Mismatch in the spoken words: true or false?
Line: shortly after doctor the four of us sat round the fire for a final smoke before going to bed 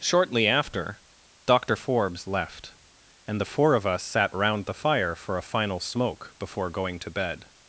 true